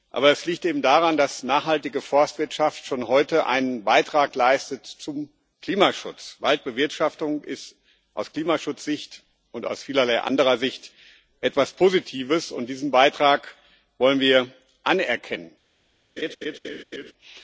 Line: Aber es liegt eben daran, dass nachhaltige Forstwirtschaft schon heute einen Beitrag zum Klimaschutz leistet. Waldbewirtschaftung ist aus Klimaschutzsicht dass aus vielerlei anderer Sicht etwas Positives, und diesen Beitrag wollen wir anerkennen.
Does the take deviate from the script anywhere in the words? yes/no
yes